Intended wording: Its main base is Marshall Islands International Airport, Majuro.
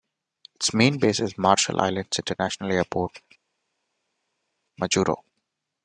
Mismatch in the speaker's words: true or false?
false